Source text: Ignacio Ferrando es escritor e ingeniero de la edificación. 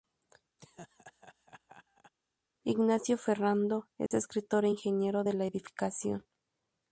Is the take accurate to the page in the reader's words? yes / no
yes